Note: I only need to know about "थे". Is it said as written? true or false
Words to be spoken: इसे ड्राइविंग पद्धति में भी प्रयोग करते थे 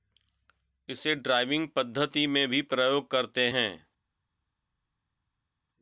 false